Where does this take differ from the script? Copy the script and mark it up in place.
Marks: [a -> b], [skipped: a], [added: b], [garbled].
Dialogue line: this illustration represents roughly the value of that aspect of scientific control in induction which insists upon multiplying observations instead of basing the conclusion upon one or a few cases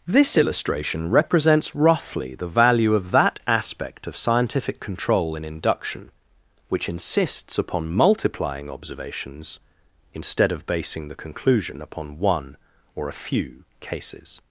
this illustration represents roughly the value of that aspect of scientific control in induction which insists upon multiplying observations instead of basing the conclusion upon one or a few cases